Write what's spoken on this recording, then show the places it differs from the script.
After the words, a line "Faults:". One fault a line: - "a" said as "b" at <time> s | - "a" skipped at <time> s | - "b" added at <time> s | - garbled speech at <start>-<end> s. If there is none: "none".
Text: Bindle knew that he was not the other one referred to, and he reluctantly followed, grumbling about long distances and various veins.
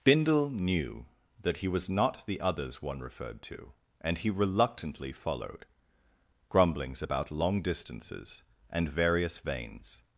Bindle knew that he was not the others one referred to, and he reluctantly followed, grumblings about long distances and various veins.
Faults:
- "other" said as "others" at 2.4 s
- "grumbling" said as "grumblings" at 6.5 s